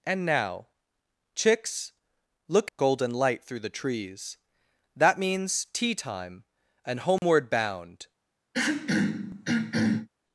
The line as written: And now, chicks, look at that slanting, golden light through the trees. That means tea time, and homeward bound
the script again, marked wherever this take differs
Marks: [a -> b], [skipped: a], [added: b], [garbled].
And now, chicks, look [skipped: at that slanting,] golden light through the trees. That means tea time, and homeward bound